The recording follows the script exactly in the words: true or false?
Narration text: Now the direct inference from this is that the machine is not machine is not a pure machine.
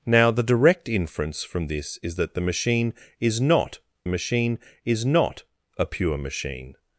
true